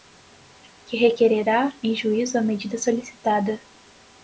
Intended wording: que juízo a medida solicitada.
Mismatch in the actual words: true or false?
true